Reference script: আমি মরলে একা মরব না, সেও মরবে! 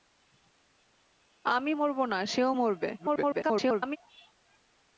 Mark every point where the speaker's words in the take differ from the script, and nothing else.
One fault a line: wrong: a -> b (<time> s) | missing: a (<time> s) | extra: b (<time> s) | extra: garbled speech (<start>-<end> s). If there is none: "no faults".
missing: মরলে একা (1.7 s)
extra: garbled speech (3.0-4.0 s)